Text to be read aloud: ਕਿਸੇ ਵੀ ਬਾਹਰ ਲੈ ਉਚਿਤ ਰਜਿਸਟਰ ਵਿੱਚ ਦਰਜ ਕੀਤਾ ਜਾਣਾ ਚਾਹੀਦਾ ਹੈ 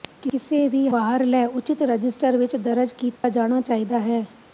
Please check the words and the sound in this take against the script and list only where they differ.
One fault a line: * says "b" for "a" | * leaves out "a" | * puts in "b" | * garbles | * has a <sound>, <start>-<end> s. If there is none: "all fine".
* has a dropout, 3.2-3.2 s